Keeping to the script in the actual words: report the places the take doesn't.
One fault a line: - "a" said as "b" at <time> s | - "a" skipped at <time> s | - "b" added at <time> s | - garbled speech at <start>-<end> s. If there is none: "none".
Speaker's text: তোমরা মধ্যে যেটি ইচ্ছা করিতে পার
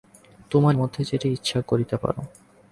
none